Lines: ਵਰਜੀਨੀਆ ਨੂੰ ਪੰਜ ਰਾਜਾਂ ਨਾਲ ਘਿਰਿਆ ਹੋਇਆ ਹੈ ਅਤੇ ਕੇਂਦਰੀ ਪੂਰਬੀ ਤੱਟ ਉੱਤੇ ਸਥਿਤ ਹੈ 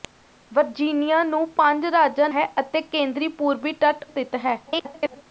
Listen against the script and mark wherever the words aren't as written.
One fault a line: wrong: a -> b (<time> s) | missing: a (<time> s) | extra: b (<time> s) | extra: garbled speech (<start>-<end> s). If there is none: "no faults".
missing: ਨਾਲ ਘਿਰਿਆ ਹੋਇਆ (2.3 s)
missing: ਉੱਤੇ (4.1 s)
extra: garbled speech (4.7-5.2 s)